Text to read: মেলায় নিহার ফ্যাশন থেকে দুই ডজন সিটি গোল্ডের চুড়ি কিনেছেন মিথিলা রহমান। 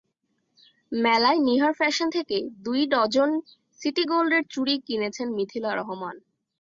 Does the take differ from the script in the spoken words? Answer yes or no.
no